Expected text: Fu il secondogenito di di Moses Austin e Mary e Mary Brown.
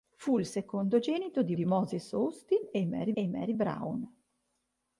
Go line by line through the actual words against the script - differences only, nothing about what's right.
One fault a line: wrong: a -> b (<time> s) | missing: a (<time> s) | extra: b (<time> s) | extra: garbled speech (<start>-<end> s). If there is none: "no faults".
no faults